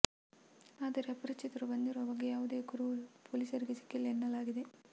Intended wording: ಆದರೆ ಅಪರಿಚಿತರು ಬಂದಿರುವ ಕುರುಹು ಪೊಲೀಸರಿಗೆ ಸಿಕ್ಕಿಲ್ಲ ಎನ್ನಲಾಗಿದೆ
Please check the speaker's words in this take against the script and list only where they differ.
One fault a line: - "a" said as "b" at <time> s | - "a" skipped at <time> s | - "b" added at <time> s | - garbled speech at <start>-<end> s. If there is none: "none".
- "ಬಗ್ಗೆ ಯಾವುದೇ" added at 2.1 s